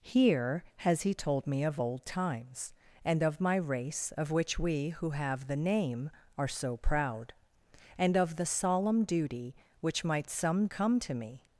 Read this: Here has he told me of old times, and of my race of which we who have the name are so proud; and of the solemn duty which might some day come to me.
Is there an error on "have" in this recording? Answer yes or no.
no